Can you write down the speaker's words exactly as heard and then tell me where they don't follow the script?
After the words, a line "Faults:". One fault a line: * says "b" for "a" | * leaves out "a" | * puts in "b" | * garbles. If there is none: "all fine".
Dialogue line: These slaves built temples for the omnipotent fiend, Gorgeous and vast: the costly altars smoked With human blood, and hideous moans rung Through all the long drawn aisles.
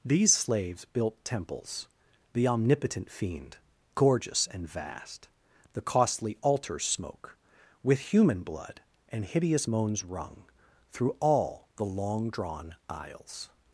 These slaves built temples the omnipotent fiend, Gorgeous and vast: the costly altars smoke With human blood, and hideous moans rung Through all the long drawn aisles.
Faults:
* leaves out "for"
* says "smoke" for "smoked"